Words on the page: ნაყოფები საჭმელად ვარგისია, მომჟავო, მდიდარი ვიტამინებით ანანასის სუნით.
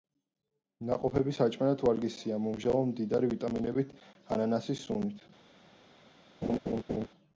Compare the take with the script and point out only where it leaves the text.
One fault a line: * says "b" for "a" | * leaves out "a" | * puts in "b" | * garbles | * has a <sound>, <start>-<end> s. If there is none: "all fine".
* has a laugh, 6.4-7.1 s